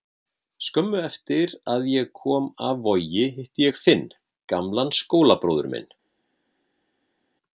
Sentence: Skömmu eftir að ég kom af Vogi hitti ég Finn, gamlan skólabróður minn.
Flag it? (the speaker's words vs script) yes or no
no